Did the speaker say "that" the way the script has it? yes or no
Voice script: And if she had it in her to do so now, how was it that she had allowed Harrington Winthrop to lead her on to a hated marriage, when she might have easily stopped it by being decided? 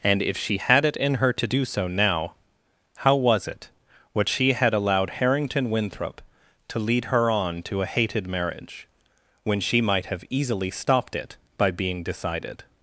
no